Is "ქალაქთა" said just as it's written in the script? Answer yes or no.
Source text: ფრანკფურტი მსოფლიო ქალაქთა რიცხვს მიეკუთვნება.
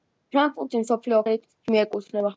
no